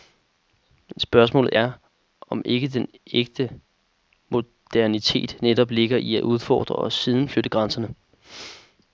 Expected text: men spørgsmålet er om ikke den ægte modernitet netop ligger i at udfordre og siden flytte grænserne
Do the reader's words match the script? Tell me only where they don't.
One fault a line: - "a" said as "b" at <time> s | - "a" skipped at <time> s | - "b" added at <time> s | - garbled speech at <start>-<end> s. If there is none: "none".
none